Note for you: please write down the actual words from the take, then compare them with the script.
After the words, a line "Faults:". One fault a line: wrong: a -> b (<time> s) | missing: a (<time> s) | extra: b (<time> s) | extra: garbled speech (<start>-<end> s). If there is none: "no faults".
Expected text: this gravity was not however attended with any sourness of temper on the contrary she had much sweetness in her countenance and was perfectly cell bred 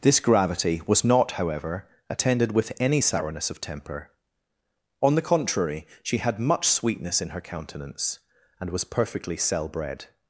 this gravity was not however attended with any sourness of temper on the contrary she had much sweetness in her countenance and was perfectly cell bred
Faults:
no faults